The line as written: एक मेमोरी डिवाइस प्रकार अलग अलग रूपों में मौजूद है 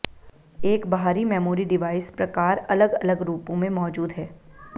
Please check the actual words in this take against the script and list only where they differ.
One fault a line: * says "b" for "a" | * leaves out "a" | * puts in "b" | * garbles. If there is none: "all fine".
* puts in "बाहरी"